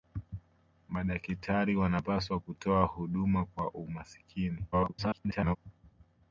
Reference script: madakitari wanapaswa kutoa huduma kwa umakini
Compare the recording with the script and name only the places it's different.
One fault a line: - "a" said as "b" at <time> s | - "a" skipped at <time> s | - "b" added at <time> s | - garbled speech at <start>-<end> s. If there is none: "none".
- garbled speech at 4.7-5.6 s